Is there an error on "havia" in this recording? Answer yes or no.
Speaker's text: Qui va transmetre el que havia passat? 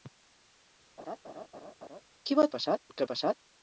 yes